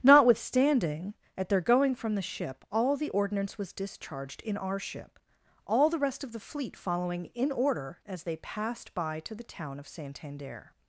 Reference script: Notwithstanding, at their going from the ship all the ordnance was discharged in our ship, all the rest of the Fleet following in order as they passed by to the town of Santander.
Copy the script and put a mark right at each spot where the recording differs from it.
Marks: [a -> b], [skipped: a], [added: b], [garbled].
Notwithstanding, at their going from the ship all the ordnance was discharged in our ship, all the rest of the Fleet following in order as they passed by to the town of Santander.